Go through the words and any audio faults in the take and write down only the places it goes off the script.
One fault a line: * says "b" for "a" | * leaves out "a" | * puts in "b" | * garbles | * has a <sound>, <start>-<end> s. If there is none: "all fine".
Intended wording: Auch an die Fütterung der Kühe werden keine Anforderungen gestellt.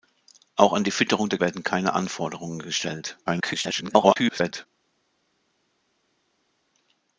* leaves out "Kühe"
* garbles